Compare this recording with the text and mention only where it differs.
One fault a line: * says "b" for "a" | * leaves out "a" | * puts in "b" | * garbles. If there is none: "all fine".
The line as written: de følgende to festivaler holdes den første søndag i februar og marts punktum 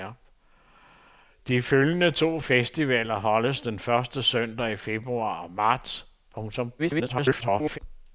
* garbles